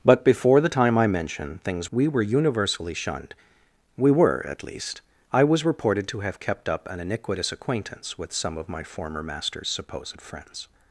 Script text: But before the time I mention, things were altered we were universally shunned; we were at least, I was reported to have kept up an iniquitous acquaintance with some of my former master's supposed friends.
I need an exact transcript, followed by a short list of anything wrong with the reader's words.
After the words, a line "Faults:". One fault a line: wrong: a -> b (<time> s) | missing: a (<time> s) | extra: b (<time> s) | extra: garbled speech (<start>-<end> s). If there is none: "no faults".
But before the time I mention, things we were universally shunned; we were at least, I was reported to have kept up an iniquitous acquaintance with some of my former master's supposed friends.
Faults:
missing: were altered (1.9 s)